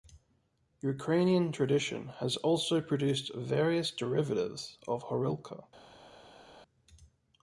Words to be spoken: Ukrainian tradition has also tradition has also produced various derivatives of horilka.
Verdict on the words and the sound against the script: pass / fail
fail